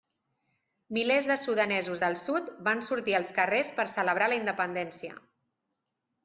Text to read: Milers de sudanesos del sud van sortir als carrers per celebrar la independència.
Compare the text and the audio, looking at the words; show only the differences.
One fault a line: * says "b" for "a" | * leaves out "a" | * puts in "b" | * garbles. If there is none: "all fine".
all fine